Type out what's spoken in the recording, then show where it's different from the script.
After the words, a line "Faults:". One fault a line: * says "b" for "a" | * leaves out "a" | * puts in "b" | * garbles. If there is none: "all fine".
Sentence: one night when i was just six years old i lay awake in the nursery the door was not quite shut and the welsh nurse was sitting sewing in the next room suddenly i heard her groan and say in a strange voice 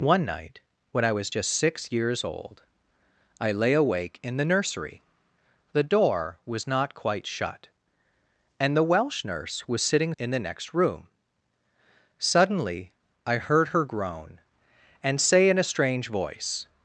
one night when i was just six years old i lay awake in the nursery the door was not quite shut and the welsh nurse was sitting in the next room suddenly i heard her groan and say in a strange voice
Faults:
* leaves out "sewing"